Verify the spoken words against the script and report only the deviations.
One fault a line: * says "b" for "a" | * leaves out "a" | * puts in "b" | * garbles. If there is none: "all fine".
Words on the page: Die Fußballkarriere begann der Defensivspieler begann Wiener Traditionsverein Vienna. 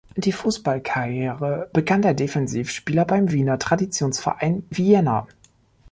* says "beim" for "begann"